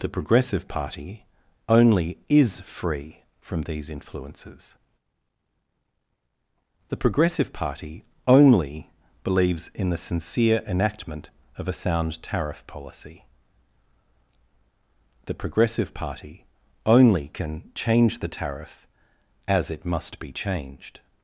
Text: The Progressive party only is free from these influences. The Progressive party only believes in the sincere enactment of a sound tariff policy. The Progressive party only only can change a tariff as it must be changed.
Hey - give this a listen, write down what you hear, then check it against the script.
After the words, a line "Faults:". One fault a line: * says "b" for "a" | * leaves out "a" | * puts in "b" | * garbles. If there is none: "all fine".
The Progressive party only is free from these influences. The Progressive party only believes in the sincere enactment of a sound tariff policy. The Progressive party only can change the tariff as it must be changed.
Faults:
* leaves out "only"
* says "the" for "a"